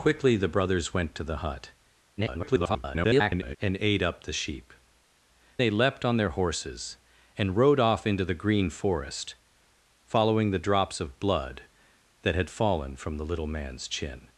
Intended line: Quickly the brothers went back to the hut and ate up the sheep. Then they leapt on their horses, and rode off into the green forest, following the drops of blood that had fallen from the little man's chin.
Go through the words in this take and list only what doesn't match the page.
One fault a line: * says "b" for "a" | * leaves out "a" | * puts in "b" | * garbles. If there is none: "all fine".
* leaves out "back"
* garbles
* leaves out "Then"